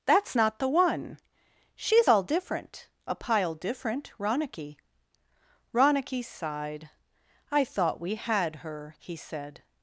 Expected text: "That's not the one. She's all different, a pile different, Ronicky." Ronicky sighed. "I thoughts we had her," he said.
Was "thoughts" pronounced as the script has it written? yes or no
no